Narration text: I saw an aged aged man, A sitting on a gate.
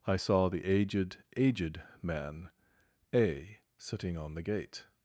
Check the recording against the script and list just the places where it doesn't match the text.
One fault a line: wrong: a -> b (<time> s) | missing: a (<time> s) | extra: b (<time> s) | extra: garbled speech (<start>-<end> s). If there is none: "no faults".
wrong: an -> the (0.5 s)
wrong: a -> the (4.3 s)